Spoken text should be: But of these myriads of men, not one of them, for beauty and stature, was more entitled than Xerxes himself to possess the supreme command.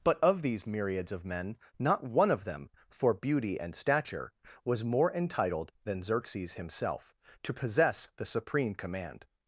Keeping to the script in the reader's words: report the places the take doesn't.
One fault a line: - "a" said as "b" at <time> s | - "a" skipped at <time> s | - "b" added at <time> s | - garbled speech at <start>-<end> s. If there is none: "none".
none